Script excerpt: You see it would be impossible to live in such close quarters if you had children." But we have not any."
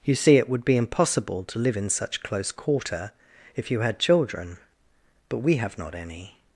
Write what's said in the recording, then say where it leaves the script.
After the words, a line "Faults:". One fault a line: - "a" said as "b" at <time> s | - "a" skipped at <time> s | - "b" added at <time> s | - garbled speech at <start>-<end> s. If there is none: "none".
You see it would be impossible to live in such close quarter if you had children." But we have not any."
Faults:
- "quarters" said as "quarter" at 2.5 s